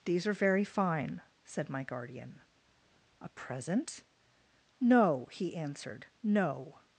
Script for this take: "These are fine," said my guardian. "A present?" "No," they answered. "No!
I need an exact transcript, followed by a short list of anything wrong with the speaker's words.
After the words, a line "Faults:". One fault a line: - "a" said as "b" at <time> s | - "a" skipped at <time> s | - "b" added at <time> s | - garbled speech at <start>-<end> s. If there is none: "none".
"These are very fine," said my guardian. "A present?" "No," he answered. "No!
Faults:
- "very" added at 0.3 s
- "they" said as "he" at 5.3 s